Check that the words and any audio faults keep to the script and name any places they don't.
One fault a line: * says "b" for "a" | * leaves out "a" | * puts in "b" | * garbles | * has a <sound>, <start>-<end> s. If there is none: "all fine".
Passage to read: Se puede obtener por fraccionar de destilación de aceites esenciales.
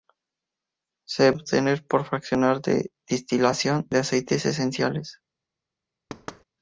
* leaves out "puede"
* has a thud, 6.1-6.4 s